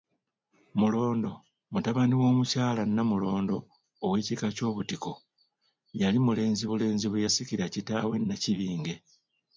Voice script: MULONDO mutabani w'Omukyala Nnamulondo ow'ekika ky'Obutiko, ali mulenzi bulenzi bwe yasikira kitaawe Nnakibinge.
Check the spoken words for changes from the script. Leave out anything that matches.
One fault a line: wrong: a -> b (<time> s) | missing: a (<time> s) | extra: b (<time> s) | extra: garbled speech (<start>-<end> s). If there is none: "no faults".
wrong: ali -> yali (6.0 s)